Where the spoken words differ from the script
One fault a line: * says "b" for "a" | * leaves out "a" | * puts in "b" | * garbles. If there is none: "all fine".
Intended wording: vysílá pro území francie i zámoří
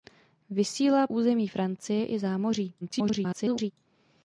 * leaves out "pro"
* garbles